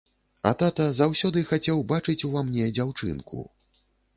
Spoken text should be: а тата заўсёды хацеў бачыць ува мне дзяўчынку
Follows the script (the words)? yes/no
yes